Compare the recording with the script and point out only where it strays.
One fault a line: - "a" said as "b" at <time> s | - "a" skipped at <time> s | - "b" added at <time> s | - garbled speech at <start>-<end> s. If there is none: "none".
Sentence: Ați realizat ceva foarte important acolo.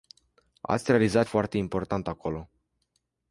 - "ceva" skipped at 1.3 s